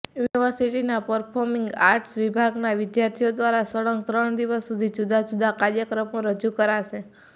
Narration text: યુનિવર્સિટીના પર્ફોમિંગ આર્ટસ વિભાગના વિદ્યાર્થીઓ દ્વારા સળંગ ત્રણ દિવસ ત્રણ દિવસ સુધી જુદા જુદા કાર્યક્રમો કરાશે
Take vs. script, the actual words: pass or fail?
fail